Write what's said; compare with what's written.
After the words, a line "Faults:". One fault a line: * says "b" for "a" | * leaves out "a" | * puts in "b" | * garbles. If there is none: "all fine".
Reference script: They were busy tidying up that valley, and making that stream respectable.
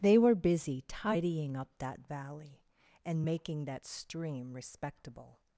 They were busy tidying up that valley, and making that stream respectable.
Faults:
all fine